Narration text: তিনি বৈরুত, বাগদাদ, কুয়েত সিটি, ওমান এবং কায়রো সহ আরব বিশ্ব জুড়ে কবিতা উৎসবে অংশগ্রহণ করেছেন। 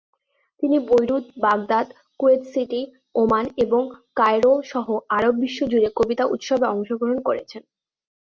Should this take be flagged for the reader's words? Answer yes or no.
no